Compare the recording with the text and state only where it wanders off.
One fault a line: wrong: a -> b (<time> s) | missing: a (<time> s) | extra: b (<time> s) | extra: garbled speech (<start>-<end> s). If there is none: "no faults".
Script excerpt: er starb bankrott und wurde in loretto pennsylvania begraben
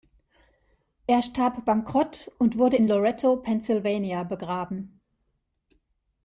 no faults